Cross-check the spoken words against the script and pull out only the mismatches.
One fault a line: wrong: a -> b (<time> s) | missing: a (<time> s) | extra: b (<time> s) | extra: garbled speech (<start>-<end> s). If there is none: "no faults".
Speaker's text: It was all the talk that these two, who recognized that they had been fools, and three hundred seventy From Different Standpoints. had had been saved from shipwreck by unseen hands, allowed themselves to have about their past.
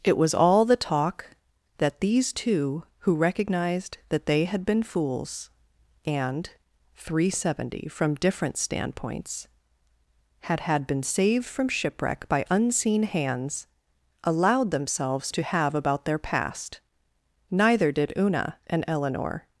extra: Neither did Una and Eleanor (17.5 s)